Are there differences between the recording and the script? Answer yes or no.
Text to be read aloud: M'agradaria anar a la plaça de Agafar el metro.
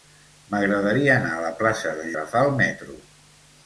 no